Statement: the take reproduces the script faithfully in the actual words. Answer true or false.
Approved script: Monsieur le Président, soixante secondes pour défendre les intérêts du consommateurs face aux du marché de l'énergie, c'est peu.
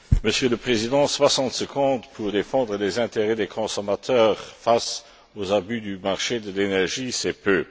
false